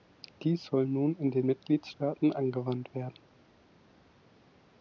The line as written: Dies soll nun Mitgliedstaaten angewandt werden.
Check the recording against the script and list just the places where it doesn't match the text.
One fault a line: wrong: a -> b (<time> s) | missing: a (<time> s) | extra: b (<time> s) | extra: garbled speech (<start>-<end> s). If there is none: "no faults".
extra: in den (1.1 s)